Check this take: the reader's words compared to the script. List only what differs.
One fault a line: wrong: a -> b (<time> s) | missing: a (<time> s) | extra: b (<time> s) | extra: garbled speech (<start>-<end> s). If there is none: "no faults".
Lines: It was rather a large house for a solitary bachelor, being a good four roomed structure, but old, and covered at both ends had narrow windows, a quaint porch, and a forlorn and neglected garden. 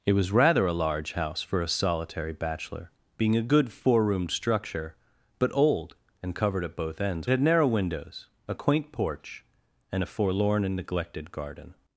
no faults